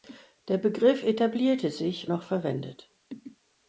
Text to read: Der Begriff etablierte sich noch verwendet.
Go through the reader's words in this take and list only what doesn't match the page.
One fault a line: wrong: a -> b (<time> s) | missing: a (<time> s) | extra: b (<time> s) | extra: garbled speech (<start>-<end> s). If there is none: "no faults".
no faults